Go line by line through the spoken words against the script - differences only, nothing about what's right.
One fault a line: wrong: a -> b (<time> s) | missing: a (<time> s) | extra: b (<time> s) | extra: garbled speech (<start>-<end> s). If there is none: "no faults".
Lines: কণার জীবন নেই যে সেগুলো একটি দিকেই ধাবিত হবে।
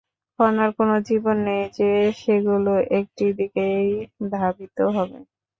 extra: কোনো (0.8 s)